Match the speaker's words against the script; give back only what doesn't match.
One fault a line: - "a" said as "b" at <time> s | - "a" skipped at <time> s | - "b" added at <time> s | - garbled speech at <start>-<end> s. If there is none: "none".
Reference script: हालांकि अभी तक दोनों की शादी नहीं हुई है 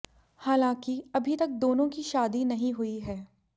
none